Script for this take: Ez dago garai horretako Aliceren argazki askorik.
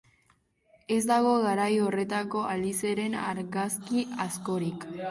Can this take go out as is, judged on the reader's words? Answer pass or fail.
pass